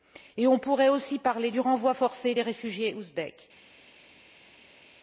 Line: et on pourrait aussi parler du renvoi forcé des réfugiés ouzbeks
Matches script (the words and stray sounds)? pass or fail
pass